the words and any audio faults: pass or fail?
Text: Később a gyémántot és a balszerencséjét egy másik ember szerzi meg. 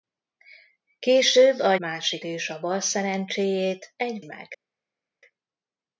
fail